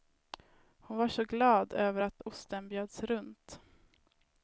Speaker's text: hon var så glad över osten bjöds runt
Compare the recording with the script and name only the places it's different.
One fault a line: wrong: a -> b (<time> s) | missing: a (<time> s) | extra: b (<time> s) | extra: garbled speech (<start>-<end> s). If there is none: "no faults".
extra: att (2.0 s)